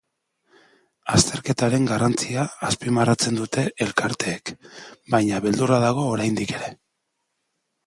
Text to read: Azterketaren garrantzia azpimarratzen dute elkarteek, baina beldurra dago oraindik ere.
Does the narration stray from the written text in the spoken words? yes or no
no